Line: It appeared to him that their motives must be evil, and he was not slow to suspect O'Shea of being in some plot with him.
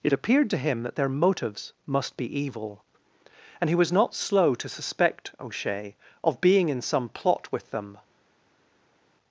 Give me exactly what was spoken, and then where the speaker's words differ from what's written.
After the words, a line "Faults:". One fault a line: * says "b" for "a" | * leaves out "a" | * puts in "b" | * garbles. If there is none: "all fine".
It appeared to him that their motives must be evil, and he was not slow to suspect O'Shea of being in some plot with them.
Faults:
* says "them" for "him"